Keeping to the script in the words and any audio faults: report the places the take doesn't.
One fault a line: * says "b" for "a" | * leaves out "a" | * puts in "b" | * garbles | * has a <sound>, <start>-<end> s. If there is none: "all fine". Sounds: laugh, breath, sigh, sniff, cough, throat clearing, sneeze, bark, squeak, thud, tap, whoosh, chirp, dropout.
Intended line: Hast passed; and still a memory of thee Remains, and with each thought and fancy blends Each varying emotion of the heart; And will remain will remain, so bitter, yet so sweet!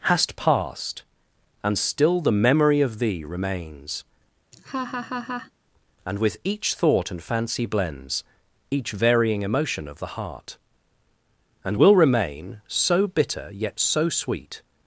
* says "the" for "a"
* has a laugh, 4.5-5.5 s
* leaves out "will remain"